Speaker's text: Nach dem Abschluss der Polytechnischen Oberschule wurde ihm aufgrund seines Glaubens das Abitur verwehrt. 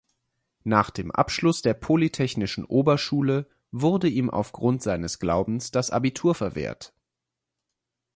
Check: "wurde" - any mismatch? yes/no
no